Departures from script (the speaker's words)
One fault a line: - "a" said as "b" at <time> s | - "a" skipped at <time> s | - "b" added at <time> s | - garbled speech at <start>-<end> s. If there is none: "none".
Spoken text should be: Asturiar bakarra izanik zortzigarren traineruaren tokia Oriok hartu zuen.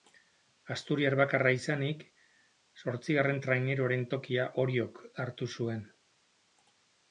none